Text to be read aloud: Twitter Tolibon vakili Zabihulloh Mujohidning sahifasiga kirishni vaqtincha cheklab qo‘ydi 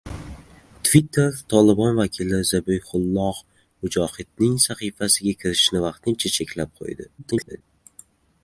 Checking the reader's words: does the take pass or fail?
fail